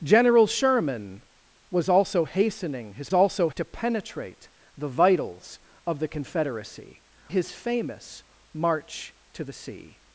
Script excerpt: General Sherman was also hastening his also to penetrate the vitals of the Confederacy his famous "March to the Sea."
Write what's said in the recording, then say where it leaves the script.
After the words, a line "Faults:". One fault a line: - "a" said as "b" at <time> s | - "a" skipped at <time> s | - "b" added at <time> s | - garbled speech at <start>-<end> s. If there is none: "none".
General Sherman was also hastening his also to penetrate the vitals of the Confederacy his famous "March to the Sea."
Faults:
none